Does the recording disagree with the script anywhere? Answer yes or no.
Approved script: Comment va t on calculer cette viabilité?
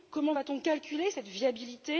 no